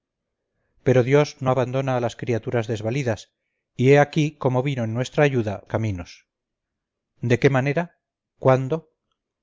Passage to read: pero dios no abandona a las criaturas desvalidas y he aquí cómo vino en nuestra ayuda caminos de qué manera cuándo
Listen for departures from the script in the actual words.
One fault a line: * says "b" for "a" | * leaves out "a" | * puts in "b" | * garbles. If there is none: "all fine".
all fine